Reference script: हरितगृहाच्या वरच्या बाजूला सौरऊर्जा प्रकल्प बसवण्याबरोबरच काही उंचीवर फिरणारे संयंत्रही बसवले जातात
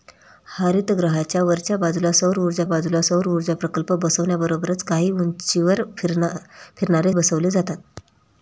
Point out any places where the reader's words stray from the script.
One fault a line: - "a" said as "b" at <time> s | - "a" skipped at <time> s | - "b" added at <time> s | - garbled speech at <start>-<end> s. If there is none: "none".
- "बाजूला सौरऊर्जा" added at 2.7 s
- "संयंत्रही" skipped at 7.1 s